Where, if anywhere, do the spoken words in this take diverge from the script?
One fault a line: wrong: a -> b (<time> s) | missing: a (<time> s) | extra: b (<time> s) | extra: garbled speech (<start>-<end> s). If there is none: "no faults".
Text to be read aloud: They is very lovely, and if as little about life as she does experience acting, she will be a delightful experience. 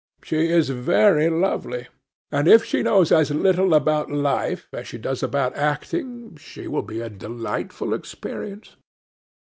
wrong: They -> She (0.2 s)
extra: she knows (2.6 s)
wrong: experience -> about (5.2 s)